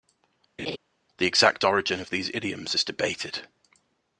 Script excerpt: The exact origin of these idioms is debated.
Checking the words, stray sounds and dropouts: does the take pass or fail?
fail